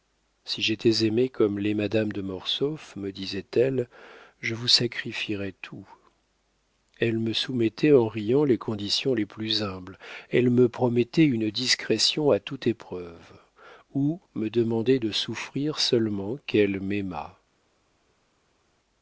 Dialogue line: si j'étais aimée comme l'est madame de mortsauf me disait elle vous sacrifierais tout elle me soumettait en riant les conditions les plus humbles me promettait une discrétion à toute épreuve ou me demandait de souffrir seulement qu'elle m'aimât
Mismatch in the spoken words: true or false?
true